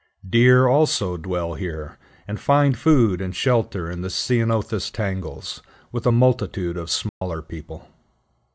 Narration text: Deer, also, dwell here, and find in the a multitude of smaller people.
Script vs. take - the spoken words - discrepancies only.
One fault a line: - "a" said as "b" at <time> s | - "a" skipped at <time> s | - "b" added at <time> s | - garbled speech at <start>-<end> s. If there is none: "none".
- "food and shelter" added at 2.8 s
- "ceanothus tangles with" added at 4.1 s